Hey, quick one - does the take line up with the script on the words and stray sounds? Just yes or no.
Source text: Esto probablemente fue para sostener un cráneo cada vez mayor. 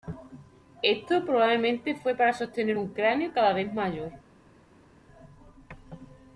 yes